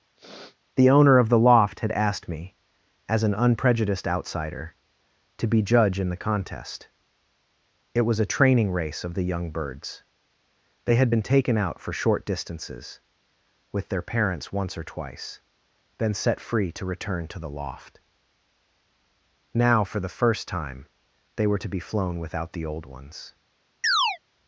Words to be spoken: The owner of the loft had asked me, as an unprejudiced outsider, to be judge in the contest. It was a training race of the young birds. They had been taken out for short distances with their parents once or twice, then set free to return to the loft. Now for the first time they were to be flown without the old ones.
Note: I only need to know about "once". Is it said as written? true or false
true